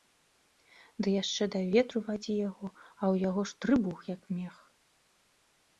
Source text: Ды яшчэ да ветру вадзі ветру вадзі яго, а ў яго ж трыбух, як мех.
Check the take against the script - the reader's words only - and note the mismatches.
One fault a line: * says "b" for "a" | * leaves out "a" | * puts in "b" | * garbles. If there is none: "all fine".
* leaves out "ветру вадзі"